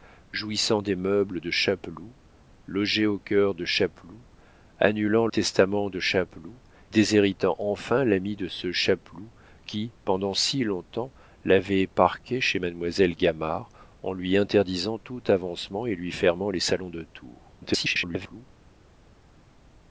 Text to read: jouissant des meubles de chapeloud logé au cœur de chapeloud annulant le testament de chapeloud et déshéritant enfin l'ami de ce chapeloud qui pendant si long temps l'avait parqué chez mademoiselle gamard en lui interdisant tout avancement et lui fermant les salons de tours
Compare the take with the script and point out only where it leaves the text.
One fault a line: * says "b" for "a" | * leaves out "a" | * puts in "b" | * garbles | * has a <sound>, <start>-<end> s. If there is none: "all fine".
* leaves out "le"
* leaves out "et"
* garbles